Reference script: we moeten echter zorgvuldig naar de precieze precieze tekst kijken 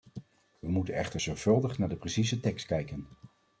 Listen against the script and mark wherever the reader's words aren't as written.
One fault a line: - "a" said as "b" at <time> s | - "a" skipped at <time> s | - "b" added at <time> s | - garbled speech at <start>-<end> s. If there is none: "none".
- "precieze" skipped at 2.4 s